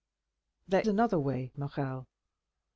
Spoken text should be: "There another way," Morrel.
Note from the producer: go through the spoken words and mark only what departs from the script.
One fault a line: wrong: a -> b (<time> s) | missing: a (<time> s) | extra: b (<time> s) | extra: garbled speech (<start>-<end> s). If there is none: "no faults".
no faults